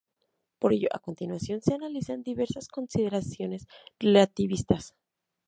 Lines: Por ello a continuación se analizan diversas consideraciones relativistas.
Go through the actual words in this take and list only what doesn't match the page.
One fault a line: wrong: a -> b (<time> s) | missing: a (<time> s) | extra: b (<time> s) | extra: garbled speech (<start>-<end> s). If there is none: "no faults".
no faults